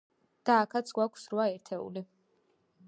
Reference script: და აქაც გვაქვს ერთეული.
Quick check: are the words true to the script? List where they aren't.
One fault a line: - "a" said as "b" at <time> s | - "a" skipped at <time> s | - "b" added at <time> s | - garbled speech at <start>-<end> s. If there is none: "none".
- "რვა" added at 1.3 s